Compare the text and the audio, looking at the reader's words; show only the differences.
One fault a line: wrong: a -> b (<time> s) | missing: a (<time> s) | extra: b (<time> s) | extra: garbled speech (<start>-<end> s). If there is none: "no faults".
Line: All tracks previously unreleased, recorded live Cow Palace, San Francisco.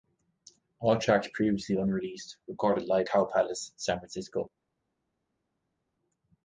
no faults